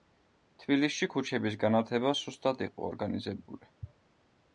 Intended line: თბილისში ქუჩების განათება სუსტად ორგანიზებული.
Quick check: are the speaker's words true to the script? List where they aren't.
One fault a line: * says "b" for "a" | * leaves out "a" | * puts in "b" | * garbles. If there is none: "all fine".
* puts in "იყო"